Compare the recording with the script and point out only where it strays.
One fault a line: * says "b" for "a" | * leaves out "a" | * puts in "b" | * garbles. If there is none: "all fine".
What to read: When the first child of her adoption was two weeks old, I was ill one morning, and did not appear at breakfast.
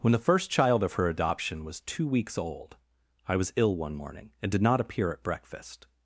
all fine